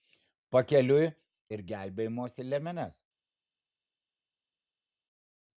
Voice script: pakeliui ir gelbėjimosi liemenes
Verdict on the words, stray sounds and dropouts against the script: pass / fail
pass